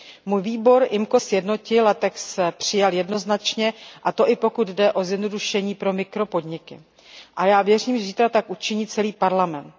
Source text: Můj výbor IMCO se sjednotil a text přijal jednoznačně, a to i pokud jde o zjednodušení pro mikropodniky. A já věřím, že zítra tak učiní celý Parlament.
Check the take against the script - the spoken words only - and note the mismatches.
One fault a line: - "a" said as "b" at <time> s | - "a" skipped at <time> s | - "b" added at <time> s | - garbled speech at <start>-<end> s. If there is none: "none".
- "se" skipped at 1.2 s